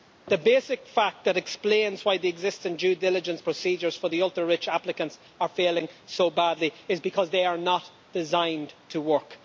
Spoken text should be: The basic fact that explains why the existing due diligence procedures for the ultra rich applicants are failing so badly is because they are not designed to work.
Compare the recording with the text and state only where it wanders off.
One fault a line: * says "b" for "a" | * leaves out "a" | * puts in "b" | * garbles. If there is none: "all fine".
all fine